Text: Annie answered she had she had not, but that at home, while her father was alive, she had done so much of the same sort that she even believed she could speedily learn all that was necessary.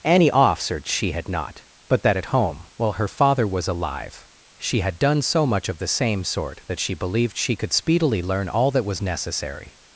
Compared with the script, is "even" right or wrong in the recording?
wrong